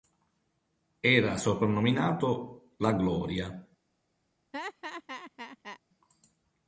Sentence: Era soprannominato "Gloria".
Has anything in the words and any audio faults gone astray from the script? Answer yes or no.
yes